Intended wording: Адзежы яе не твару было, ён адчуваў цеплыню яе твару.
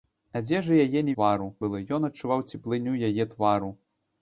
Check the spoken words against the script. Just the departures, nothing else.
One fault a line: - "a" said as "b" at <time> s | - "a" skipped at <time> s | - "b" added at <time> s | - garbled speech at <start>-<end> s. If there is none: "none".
none